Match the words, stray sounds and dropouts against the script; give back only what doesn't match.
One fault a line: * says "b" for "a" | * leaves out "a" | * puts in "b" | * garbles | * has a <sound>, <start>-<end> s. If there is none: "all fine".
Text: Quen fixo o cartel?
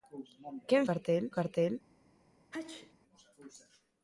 * says "cartel" for "fixo"
* has a sneeze, 2.5-2.9 s